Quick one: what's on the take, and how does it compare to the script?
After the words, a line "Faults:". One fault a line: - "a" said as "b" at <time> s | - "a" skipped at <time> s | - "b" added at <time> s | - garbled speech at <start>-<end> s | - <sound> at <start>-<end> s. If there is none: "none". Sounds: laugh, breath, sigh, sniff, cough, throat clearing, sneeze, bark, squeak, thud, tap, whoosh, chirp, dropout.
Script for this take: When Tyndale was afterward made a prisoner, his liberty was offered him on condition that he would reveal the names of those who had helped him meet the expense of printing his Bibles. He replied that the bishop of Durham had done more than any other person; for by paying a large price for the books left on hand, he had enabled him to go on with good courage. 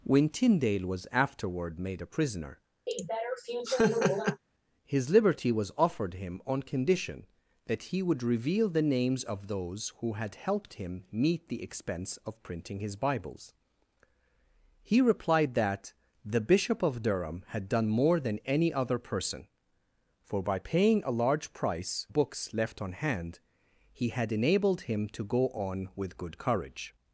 When Tyndale was afterward made a prisoner, his liberty was offered him on condition that he would reveal the names of those who had helped him meet the expense of printing his Bibles. He replied that the bishop of Durham had done more than any other person; for by paying a large price books left on hand, he had enabled him to go on with good courage.
Faults:
- laugh at 2.9-4.4 s
- "for the" skipped at 22.1 s